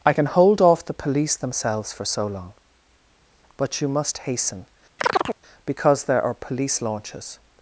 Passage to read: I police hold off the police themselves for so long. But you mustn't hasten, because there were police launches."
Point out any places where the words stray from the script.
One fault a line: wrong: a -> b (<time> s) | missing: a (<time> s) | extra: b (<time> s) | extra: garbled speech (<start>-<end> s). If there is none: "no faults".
wrong: police -> can (0.1 s)
wrong: mustn't -> must (3.9 s)
wrong: were -> are (6.2 s)